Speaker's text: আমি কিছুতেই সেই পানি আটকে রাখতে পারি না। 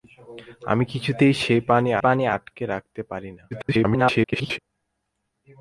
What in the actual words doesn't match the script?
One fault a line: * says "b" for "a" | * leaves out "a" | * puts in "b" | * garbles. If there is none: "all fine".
* puts in "পানি"
* garbles